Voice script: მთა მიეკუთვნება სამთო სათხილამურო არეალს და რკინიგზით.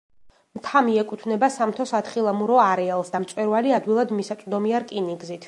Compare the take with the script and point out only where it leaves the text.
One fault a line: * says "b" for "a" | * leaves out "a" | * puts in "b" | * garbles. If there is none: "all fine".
* puts in "მწვერვალი ადვილად მისაწვდომია"